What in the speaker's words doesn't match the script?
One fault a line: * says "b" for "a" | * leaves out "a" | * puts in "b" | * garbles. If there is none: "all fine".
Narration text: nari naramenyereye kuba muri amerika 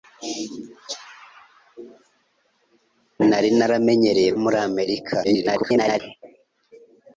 * leaves out "kuba"
* garbles